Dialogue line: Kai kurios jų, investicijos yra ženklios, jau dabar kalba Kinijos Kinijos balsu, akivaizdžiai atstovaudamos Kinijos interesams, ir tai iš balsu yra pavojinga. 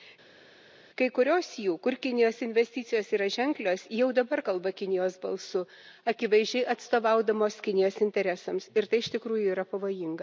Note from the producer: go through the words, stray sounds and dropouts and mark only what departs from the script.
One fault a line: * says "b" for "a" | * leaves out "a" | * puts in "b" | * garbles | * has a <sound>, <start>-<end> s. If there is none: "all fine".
* puts in "kur Kinijos"
* leaves out "Kinijos"
* says "tikrųjų" for "balsu"